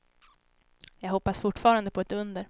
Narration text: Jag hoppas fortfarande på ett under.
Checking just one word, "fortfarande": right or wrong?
right